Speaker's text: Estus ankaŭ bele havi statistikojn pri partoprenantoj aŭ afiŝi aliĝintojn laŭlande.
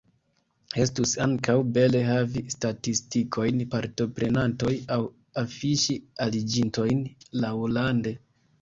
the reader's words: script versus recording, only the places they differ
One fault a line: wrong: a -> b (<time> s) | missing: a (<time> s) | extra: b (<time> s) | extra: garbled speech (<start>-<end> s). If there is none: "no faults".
missing: pri (3.6 s)